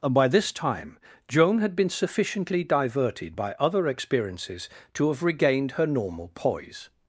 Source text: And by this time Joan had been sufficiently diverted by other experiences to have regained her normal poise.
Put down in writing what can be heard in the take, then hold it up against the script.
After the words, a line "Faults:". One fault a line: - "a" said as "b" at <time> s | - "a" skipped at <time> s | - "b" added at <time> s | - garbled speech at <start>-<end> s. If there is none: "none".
And by this time Joan had been sufficiently diverted by other experiences to have regained her normal poise.
Faults:
none